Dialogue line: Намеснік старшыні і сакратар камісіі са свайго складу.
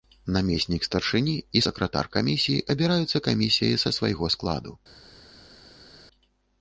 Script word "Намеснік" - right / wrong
right